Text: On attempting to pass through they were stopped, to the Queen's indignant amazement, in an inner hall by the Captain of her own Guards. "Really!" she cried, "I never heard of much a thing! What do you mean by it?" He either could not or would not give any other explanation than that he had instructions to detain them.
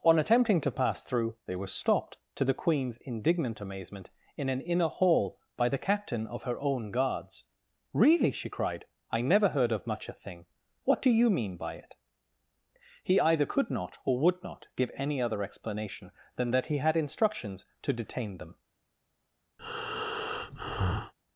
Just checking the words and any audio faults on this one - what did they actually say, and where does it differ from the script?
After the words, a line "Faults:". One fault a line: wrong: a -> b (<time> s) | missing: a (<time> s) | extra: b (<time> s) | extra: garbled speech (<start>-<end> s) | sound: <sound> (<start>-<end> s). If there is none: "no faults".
On attempting to pass through they were stopped, to the Queen's indignant amazement, in an inner hall by the Captain of her own Guards. "Really!" she cried, "I never heard of much a thing! What do you mean by it?" He either could not or would not give any other explanation than that he had instructions to detain them.
Faults:
sound: breath (19.6-21.1 s)